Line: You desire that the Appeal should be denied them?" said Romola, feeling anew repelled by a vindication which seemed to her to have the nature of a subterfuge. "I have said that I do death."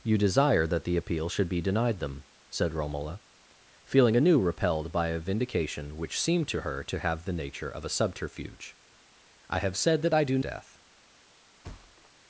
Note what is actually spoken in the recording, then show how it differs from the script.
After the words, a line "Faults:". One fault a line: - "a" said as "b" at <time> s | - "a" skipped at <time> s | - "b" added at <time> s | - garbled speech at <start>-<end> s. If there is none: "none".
You desire that the Appeal should be denied them?" said Romola, feeling anew repelled by a vindication which seemed to her to have the nature of a subterfuge. "I have said that I do death."
Faults:
none